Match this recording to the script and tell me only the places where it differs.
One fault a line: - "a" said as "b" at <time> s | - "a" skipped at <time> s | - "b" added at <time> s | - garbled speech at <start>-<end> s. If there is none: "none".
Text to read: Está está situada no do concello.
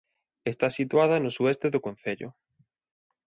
- "está" skipped at 0.7 s
- "sueste" added at 1.4 s